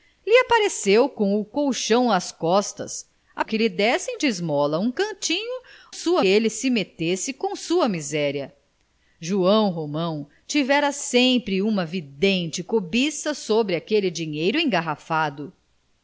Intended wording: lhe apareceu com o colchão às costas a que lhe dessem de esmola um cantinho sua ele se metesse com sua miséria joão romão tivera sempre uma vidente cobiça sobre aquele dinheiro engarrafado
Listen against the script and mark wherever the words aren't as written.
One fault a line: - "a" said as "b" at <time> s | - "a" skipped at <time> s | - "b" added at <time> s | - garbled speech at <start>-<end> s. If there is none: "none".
none